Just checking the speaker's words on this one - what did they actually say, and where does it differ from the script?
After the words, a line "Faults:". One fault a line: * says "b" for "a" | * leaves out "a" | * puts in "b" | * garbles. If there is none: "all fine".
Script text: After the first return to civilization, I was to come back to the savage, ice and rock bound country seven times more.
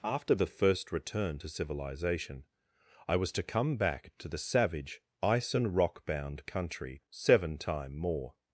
After the first return to civilization, I was to come back to the savage, ice and rock bound country seven time more.
Faults:
* says "time" for "times"